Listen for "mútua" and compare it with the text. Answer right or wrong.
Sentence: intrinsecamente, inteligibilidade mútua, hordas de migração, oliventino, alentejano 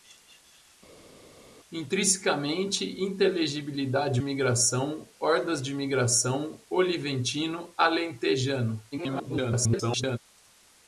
wrong